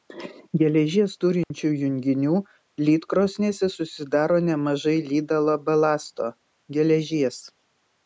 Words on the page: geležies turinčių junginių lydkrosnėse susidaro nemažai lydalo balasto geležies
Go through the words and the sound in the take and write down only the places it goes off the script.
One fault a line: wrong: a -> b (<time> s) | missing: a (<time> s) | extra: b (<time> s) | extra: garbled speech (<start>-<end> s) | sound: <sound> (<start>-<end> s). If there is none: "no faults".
sound: dropout (1.4-1.5 s)